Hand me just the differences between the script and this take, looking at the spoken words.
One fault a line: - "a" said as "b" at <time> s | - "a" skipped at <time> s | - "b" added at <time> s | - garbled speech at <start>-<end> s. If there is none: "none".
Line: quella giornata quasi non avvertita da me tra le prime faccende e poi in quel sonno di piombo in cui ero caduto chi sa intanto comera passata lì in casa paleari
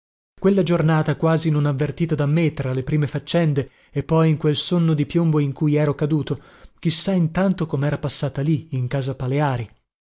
none